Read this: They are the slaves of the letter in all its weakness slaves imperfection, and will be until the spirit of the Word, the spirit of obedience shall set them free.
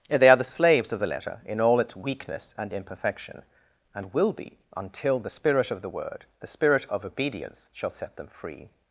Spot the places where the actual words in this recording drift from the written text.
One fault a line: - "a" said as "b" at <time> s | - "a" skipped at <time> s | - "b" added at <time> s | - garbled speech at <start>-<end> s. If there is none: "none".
- "slaves" said as "and" at 2.6 s